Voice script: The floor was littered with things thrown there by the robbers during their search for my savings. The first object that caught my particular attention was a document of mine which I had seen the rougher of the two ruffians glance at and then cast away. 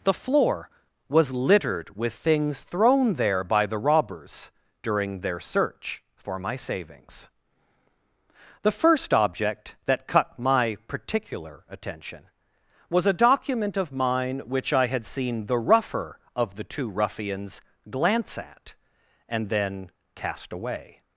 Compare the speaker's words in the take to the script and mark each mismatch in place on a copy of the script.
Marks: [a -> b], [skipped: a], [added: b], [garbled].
The floor was littered with things thrown there by the robbers during their search for my savings. The first object that [caught -> cut] my particular attention was a document of mine which I had seen the rougher of the two ruffians glance at and then cast away.